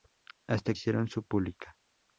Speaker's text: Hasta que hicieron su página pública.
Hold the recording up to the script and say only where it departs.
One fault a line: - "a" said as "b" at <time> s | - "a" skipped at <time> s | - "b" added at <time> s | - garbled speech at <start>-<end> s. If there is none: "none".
- "que" skipped at 0.7 s
- "página" skipped at 1.2 s